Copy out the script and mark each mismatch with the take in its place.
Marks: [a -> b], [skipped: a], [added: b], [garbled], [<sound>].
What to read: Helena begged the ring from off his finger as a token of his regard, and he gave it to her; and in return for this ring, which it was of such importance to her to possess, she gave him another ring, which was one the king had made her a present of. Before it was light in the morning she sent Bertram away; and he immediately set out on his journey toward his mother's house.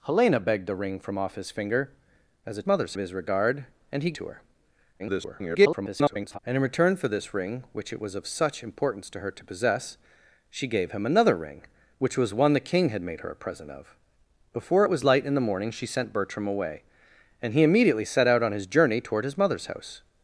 Helena begged the ring from off his finger as a [token -> mother's] of his regard, and he [skipped: gave it] to her; [garbled] and in return for this ring, which it was of such importance to her to possess, she gave him another ring, which was one the king had made her a present of. Before it was light in the morning she sent Bertram away; and he immediately set out on his journey toward his mother's house.